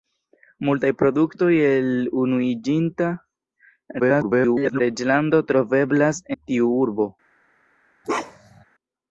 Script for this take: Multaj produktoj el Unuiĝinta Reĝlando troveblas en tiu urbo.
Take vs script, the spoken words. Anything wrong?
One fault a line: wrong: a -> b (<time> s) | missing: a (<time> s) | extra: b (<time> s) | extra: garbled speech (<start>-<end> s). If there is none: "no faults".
extra: garbled speech (4.0-4.8 s)
missing: en (6.3 s)